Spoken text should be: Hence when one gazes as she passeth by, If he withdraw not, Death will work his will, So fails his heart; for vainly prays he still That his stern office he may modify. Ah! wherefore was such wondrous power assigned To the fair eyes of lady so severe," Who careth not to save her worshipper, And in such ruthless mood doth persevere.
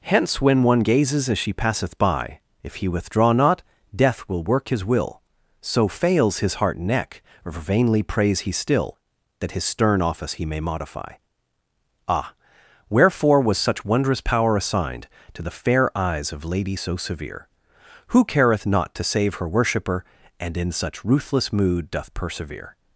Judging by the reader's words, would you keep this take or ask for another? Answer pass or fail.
fail